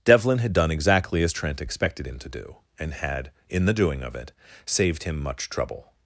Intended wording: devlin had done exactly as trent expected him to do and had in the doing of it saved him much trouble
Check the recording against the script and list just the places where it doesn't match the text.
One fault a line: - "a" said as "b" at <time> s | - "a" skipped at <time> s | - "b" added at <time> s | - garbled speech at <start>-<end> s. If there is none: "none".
none